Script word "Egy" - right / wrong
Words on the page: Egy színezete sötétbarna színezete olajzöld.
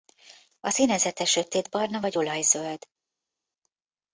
wrong